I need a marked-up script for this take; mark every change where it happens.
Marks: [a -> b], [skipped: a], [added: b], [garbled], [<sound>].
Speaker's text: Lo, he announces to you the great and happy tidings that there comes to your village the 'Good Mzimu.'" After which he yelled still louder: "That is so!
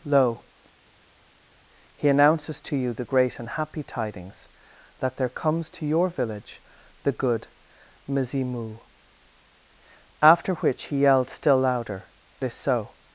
Lo, he announces to you the great and happy tidings that there comes to your village the 'Good Mzimu.'" After which he yelled still louder: [skipped: "That] is so!